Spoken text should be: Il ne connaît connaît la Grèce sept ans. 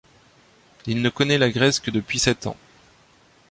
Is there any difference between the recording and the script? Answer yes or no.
yes